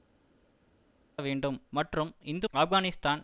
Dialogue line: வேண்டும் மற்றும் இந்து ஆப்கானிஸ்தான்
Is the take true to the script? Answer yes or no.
yes